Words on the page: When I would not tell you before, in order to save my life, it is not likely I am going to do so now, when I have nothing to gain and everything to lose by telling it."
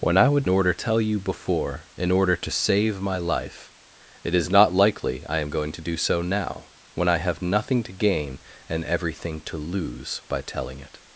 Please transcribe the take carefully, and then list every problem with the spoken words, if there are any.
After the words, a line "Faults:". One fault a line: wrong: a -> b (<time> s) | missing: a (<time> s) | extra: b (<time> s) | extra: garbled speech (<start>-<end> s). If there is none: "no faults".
When I would order tell you before, in order to save my life, it is not likely I am going to do so now, when I have nothing to gain and everything to lose by telling it."
Faults:
wrong: not -> order (0.5 s)